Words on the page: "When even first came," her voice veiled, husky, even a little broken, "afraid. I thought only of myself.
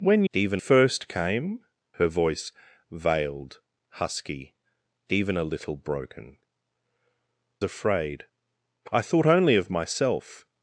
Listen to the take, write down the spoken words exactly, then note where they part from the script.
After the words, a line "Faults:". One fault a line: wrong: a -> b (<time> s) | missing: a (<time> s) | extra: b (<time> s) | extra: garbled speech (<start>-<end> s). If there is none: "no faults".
"When even first came," her voice veiled, husky, even a little broken, "afraid. I thought only of myself.
Faults:
no faults